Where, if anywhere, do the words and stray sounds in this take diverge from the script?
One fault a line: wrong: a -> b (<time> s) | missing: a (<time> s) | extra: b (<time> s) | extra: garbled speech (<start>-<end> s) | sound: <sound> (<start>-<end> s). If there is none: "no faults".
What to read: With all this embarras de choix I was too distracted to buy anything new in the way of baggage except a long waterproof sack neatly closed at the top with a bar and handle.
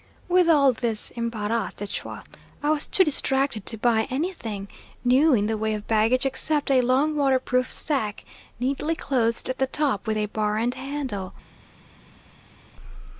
no faults